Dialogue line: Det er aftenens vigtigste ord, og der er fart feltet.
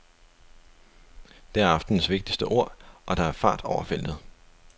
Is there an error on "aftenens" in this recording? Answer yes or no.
no